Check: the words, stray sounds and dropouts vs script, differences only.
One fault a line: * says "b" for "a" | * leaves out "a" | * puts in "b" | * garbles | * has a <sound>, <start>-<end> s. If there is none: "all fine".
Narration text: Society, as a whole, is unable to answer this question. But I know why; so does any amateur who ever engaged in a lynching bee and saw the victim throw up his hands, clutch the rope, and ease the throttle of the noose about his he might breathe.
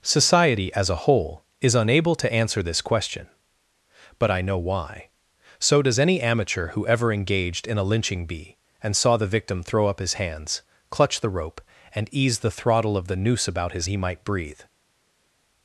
all fine